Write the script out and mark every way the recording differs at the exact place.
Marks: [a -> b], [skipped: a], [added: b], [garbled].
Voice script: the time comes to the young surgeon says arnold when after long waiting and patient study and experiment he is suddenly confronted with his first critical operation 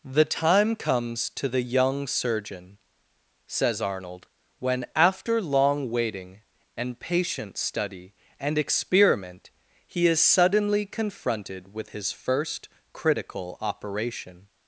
the time comes to the young surgeon says arnold when after long waiting and patient study and experiment he is suddenly confronted with his first critical operation